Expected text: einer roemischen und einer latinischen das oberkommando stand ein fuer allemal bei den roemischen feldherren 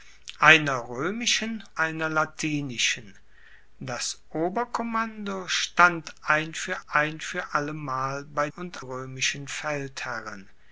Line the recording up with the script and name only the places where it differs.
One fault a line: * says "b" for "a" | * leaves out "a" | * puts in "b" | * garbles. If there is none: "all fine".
* leaves out "und"
* puts in "ein fuer"
* says "und" for "den"